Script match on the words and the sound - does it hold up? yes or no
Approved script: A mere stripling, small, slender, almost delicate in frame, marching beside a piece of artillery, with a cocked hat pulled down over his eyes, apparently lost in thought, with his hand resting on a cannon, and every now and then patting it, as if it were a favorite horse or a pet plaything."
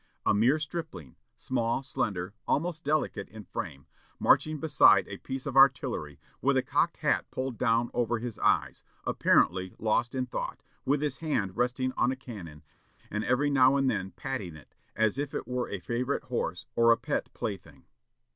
yes